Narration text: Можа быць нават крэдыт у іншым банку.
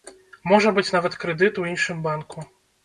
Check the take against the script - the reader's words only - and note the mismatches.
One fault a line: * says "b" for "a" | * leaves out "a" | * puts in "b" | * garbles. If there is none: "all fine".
all fine